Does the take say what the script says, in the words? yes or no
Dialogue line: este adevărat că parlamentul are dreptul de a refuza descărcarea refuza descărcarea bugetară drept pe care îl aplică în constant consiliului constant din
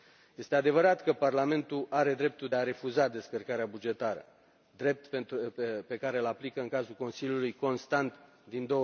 no